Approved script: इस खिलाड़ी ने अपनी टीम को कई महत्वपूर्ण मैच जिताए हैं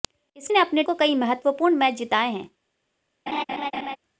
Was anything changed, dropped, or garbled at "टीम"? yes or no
yes